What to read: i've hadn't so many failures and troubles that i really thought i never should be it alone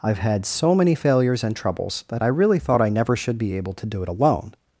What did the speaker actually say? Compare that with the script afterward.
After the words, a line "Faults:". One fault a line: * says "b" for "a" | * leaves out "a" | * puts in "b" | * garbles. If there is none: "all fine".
i've had so many failures and troubles that i really thought i never should be able to do it alone
Faults:
* says "had" for "hadn't"
* puts in "able to do"